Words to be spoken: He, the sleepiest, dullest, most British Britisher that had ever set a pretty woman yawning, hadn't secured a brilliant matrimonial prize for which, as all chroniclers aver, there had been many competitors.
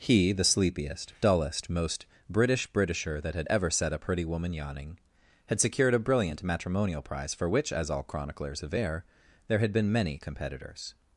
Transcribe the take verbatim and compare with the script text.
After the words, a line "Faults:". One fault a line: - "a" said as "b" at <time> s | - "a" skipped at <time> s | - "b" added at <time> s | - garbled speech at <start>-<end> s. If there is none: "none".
He, the sleepiest, dullest, most British Britisher that had ever set a pretty woman yawning, had secured a brilliant matrimonial prize for which, as all chroniclers aver, there had been many competitors.
Faults:
- "hadn't" said as "had" at 5.5 s